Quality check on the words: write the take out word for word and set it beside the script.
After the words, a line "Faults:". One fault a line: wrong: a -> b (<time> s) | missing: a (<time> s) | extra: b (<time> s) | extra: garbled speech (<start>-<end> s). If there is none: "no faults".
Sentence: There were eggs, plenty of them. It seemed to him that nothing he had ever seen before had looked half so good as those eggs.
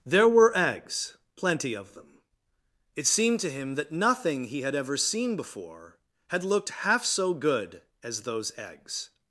There were eggs, plenty of them. It seemed to him that nothing he had ever seen before had looked half so good as those eggs.
Faults:
no faults